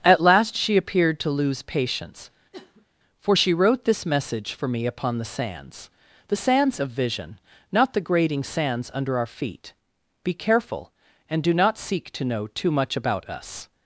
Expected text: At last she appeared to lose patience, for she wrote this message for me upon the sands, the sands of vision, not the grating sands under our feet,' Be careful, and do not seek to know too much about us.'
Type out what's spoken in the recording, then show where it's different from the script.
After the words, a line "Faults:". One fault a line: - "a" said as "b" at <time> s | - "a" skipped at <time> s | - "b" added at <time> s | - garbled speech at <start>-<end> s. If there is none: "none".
At last she appeared to lose patience, for she wrote this message for me upon the sands, the sands of vision, not the grating sands under our feet,' Be careful, and do not seek to know too much about us.'
Faults:
none